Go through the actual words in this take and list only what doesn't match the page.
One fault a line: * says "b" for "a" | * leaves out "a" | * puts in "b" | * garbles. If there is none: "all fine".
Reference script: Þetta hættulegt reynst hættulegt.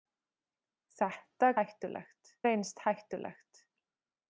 all fine